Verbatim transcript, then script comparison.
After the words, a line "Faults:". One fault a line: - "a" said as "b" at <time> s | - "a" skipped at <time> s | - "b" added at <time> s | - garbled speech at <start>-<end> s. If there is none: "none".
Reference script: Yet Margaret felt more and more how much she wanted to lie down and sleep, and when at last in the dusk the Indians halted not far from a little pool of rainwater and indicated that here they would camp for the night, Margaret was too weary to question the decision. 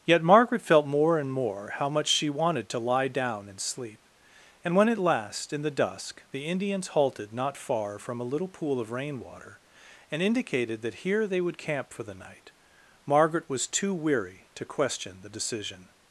Yet Margaret felt more and more how much she wanted to lie down and sleep, and when at last in the dusk the Indians halted not far from a little pool of rainwater and indicated that here they would camp for the night, Margaret was too weary to question the decision.
Faults:
none